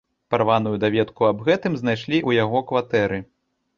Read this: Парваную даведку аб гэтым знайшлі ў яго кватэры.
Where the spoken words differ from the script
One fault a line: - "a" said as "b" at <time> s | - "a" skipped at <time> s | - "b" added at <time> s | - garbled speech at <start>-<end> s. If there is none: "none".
none